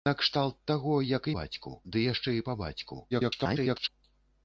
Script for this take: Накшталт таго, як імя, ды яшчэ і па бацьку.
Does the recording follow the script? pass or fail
fail